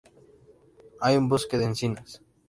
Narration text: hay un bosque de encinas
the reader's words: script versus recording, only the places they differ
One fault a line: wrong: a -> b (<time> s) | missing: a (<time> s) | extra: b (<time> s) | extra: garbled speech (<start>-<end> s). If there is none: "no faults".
no faults